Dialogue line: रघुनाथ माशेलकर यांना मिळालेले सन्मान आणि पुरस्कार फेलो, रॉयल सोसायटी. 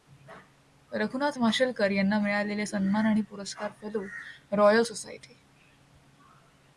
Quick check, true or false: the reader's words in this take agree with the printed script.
true